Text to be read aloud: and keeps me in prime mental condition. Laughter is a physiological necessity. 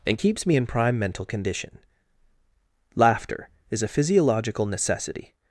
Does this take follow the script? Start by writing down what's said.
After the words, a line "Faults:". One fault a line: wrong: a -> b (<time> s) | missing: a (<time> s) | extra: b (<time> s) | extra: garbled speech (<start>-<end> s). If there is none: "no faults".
and keeps me in prime mental condition. Laughter is a physiological necessity.
Faults:
no faults